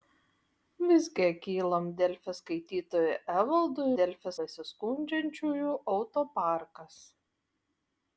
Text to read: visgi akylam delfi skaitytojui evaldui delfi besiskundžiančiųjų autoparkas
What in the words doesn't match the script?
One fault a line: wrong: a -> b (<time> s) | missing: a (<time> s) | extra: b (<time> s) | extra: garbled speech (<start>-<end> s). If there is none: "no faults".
no faults